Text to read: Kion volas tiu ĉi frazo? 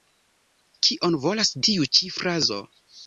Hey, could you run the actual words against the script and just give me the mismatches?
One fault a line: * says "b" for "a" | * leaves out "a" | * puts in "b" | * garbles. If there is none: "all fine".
all fine